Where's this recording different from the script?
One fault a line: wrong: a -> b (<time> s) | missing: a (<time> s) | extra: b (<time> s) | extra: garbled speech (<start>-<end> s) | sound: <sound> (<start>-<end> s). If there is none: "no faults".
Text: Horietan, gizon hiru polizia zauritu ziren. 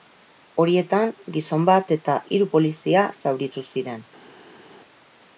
extra: bat eta (1.7 s)